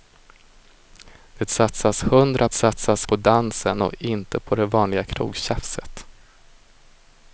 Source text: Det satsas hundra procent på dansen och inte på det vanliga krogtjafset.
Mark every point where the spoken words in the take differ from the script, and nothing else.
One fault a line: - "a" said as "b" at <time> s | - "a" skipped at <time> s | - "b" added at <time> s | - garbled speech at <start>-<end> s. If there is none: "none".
- "procent" said as "satsas" at 2.5 s